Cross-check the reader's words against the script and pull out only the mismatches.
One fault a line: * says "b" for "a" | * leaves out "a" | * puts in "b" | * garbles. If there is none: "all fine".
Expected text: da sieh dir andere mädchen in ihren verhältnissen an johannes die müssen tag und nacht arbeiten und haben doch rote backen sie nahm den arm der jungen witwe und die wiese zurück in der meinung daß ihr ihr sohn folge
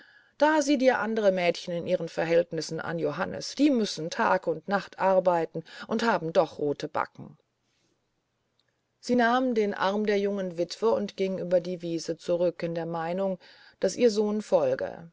* puts in "ging über"
* leaves out "ihr"